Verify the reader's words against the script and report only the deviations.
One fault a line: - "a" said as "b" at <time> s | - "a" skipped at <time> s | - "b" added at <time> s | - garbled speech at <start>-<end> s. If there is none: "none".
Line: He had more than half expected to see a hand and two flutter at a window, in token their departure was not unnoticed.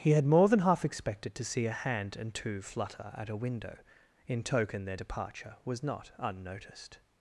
none